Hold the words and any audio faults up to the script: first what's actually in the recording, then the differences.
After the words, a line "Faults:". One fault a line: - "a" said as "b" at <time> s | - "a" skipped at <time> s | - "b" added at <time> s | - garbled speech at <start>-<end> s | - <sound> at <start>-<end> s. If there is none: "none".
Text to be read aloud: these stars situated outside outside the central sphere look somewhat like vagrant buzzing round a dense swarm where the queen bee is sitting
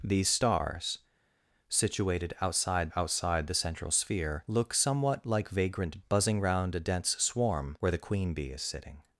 these stars situated outside outside the central sphere look somewhat like vagrant buzzing round a dense swarm where the queen bee is sitting
Faults:
none